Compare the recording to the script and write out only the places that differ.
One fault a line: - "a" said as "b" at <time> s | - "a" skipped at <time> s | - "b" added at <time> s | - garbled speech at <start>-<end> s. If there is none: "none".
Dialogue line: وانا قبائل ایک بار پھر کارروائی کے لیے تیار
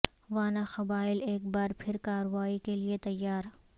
none